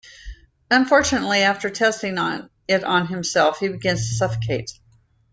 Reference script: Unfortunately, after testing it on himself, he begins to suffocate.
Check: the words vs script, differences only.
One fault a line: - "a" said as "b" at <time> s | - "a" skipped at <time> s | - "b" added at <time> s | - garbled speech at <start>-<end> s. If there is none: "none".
none